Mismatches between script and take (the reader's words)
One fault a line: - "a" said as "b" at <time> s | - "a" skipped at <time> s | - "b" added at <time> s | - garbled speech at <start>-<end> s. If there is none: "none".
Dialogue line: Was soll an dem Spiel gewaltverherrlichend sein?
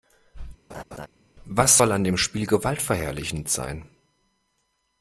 none